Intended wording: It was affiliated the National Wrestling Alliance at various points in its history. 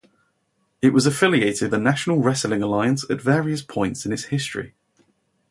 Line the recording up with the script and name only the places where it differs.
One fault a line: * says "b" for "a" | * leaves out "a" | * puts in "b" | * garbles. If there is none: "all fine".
all fine